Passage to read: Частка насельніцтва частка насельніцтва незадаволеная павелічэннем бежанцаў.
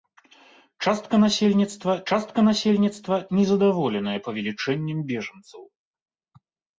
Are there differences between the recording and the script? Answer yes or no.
no